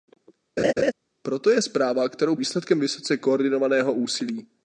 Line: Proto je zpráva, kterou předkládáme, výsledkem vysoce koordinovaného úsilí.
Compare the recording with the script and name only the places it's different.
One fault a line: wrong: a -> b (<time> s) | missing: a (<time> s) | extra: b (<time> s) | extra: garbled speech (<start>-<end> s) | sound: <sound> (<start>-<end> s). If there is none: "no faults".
sound: laugh (0.6-0.9 s)
missing: předkládáme (2.4 s)